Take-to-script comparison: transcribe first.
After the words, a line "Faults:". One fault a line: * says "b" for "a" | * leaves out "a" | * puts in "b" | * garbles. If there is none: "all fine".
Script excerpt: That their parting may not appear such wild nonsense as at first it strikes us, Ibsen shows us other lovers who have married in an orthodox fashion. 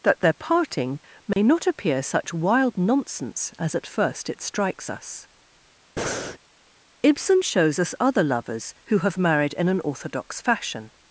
That their parting may not appear such wild nonsense as at first it strikes us, Ibsen shows us other lovers who have married in an orthodox fashion.
Faults:
all fine